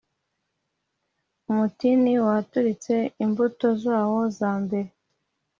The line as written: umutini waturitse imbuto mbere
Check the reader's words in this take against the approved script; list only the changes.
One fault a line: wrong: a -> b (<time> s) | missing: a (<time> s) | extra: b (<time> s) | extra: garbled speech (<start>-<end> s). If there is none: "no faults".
extra: zawo za (3.8 s)